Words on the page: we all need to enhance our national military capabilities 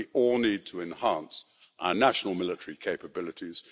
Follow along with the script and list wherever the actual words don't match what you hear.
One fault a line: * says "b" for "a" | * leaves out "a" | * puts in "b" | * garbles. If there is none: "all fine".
all fine